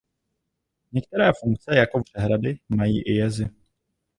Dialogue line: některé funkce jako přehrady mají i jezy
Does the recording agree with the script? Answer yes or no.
yes